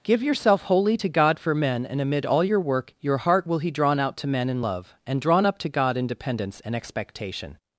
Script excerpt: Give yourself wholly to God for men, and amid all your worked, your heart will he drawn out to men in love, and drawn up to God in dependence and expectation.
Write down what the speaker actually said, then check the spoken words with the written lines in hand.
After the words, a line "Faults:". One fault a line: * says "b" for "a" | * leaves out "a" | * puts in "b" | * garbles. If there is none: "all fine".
Give yourself wholly to God for men, and amid all your work, your heart will he drawn out to men in love, and drawn up to God in dependence and expectation.
Faults:
* says "work" for "worked"